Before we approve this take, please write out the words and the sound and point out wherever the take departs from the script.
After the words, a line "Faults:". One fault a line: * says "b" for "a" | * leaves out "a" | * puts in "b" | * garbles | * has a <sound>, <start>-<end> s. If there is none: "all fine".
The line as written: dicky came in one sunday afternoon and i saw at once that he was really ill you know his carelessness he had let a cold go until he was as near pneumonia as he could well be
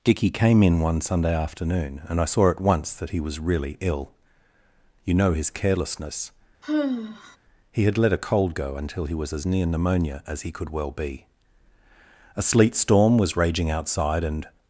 dicky came in one sunday afternoon and i saw at once that he was really ill you know his carelessness he had let a cold go until he was as near pneumonia as he could well be a sleet storm was raging outside and
Faults:
* has a sigh, 6.6-7.4 s
* puts in "a sleet storm was raging outside and"